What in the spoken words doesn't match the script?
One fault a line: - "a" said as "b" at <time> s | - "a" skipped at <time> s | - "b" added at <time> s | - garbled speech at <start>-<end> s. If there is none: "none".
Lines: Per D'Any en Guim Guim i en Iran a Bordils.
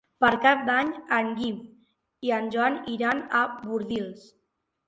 - "Cap" added at 0.5 s
- "Guim" skipped at 1.6 s
- "Joan" added at 2.6 s